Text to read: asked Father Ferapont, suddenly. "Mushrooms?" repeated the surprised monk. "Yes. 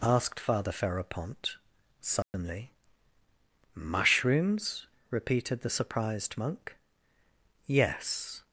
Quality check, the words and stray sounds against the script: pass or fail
fail